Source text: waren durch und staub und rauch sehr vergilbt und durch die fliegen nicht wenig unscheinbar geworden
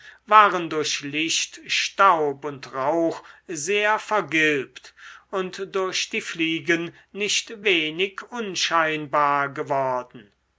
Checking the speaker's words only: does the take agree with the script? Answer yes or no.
no